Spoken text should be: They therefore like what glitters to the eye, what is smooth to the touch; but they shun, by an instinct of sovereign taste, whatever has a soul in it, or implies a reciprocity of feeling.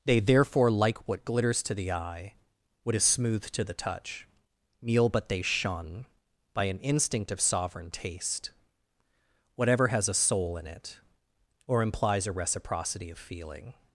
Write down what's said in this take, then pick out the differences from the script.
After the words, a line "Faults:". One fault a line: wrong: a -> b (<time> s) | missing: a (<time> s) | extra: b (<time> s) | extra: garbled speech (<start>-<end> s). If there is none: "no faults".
They therefore like what glitters to the eye, what is smooth to the touch; meal but they shun, by an instinct of sovereign taste, whatever has a soul in it, or implies a reciprocity of feeling.
Faults:
extra: meal (4.8 s)